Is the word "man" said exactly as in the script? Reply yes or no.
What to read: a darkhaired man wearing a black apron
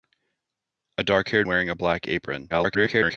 no